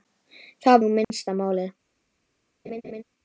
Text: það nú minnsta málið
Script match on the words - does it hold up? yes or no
yes